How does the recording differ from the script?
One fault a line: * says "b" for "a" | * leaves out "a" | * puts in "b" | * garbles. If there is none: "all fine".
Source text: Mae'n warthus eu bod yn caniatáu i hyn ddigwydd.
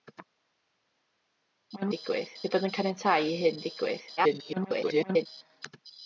* says "ddigwydd" for "warthus"
* garbles